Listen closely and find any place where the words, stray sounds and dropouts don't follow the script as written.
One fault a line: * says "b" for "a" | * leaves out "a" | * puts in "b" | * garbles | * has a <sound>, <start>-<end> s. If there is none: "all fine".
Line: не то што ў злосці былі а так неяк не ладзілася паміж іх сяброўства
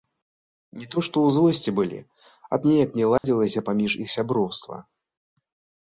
* leaves out "так"
* has a dropout, 3.2-3.2 s